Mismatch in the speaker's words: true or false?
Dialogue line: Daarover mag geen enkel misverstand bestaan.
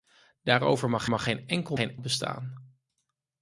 true